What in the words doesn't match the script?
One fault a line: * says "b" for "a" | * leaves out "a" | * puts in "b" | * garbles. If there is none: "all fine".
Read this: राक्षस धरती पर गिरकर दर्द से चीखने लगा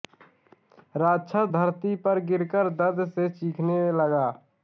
all fine